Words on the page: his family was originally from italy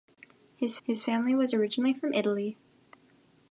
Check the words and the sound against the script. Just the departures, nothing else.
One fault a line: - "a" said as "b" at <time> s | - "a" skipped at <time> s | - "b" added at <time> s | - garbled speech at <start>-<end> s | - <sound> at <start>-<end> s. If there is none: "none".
- "his" added at 0.8 s